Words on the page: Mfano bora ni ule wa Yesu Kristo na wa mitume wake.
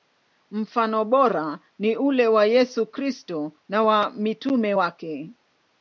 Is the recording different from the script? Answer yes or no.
no